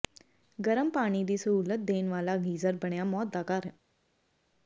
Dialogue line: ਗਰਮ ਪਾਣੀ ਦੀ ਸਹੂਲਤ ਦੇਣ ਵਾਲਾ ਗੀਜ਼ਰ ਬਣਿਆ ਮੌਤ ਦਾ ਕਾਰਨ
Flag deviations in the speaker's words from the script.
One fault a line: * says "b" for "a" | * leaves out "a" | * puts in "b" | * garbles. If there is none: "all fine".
all fine